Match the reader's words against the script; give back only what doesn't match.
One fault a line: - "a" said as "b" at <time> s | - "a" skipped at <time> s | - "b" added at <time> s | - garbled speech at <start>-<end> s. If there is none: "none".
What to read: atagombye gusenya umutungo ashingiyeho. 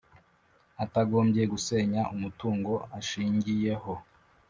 none